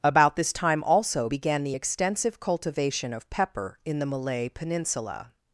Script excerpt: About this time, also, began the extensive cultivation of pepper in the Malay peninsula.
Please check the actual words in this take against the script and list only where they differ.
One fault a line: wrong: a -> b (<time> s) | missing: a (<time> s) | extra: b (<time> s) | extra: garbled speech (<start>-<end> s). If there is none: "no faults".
no faults